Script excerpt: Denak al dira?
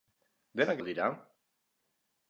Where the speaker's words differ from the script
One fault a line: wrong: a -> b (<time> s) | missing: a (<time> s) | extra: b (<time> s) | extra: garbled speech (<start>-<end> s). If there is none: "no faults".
no faults